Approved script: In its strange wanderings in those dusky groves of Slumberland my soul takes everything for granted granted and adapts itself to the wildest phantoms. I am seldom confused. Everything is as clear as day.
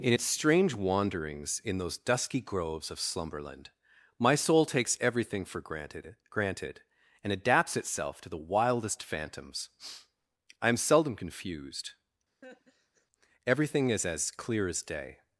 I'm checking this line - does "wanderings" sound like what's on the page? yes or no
yes